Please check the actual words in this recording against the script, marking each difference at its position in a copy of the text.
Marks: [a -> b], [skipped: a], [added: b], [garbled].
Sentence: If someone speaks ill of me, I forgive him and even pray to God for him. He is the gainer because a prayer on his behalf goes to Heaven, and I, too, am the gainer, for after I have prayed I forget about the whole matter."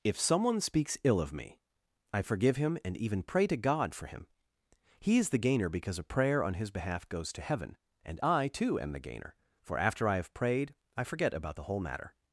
If someone speaks ill of me, I forgive him and even pray to God for him. He is the gainer because a prayer on his behalf goes to Heaven, and I, too, am the gainer, for after I have prayed I forget about the whole matter."